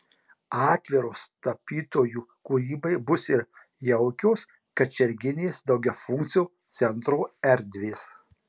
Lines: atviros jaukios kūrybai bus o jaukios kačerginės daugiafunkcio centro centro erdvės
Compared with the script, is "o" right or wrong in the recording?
wrong